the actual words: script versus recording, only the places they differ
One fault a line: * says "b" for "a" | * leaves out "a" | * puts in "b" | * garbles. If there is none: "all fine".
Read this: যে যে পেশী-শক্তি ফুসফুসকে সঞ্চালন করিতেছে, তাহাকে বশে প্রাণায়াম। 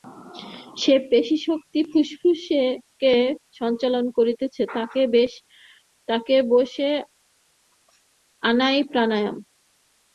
* leaves out "যে"
* puts in "আনাই"